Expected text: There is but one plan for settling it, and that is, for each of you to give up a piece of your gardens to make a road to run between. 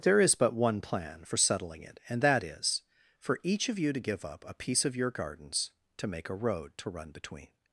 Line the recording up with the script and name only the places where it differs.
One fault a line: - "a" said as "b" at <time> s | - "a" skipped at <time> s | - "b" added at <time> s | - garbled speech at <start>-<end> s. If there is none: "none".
none